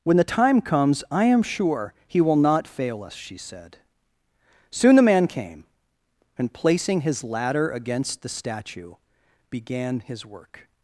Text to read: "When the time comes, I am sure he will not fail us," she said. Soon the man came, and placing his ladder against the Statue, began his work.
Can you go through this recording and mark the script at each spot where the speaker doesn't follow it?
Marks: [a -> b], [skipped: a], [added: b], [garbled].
"When the time comes, I am sure he will not fail us," she said. Soon the man came, and placing his ladder against the Statue, began his work.